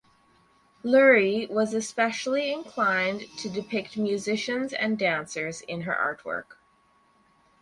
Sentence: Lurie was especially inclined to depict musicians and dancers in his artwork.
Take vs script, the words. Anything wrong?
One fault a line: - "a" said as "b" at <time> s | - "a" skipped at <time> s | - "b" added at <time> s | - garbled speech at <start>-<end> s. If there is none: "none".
- "his" said as "her" at 5.8 s